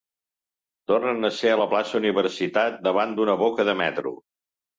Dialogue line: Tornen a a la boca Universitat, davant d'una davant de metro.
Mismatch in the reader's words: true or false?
true